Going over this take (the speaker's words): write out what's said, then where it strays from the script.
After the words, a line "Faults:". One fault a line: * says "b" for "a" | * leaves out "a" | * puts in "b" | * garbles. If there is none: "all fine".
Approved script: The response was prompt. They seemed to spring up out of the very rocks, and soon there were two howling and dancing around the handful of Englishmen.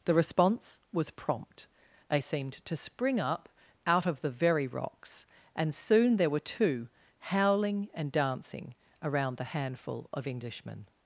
The response was prompt. They seemed to spring up out of the very rocks, and soon there were two howling and dancing around the handful of Englishmen.
Faults:
all fine